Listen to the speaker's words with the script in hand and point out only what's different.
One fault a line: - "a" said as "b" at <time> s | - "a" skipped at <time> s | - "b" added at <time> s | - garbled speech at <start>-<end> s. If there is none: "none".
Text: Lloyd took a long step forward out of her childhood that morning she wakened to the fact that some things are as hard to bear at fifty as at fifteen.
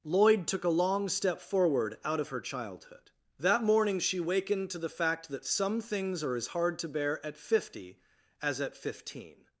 none